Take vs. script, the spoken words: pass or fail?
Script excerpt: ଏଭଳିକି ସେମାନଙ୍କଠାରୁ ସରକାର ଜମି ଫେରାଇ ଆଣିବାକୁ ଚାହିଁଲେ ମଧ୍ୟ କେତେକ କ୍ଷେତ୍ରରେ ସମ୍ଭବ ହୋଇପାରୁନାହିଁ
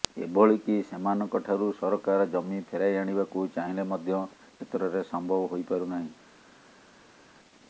fail